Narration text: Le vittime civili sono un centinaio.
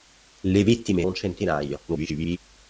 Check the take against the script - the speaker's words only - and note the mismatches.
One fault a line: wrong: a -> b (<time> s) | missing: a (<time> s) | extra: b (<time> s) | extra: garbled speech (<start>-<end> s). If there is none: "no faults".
missing: civili sono (1.1 s)
extra: garbled speech (1.9-2.4 s)